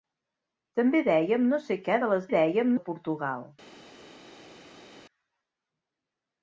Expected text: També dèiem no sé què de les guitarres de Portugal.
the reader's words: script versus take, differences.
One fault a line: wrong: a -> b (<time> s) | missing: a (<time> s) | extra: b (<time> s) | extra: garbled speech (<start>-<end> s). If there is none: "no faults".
wrong: guitarres -> dèiem (2.3 s)